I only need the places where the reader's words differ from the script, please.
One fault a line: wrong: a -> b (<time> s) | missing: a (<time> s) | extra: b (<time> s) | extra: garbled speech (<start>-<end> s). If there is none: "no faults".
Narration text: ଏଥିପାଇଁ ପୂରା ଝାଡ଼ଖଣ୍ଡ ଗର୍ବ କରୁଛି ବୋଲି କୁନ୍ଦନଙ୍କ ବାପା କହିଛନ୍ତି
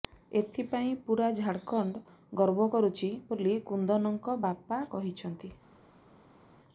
no faults